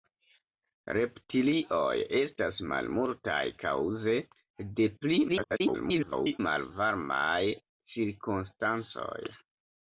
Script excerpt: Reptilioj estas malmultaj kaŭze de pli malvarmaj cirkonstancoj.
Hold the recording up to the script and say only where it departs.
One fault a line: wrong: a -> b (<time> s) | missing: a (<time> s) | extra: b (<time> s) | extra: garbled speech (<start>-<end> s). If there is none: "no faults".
extra: garbled speech (5.3-6.4 s)